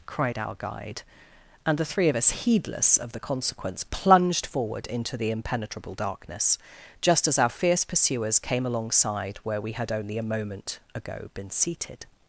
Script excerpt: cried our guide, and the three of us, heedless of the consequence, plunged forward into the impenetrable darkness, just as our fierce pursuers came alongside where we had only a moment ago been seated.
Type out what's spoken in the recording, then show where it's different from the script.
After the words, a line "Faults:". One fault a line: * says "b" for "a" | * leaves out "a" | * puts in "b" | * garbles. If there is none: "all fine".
cried our guide, and the three of us, heedless of the consequence, plunged forward into the impenetrable darkness, just as our fierce pursuers came alongside where we had only a moment ago been seated.
Faults:
all fine